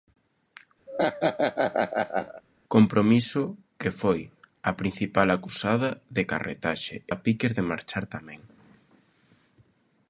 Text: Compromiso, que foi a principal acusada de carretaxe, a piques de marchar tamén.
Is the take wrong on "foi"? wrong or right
right